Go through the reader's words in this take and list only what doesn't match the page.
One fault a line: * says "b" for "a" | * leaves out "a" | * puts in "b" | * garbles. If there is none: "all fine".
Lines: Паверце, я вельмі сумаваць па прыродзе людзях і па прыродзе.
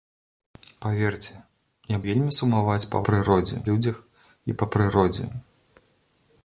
all fine